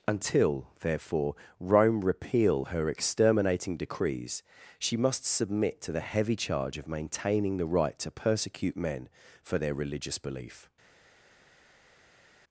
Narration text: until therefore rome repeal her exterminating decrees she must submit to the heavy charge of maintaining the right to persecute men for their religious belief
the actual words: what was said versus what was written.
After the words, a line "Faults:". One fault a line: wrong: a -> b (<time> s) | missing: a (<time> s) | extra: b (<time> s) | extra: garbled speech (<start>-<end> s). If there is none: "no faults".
until therefore rome repeal her exterminating decrees she must submit to the heavy charge of maintaining the right to persecute men for their religious belief
Faults:
no faults